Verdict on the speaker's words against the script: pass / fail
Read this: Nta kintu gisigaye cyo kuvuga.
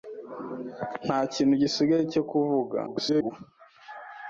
fail